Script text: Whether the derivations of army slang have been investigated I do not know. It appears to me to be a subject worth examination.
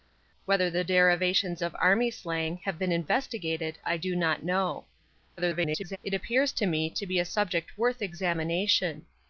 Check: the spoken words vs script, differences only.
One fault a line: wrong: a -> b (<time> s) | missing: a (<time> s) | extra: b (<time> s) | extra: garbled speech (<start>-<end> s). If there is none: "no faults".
extra: garbled speech (5.4-6.0 s)